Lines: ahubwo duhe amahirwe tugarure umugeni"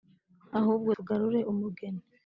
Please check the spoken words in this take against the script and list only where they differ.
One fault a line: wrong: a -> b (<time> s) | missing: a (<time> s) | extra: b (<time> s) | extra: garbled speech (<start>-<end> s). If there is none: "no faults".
missing: duhe amahirwe (0.9 s)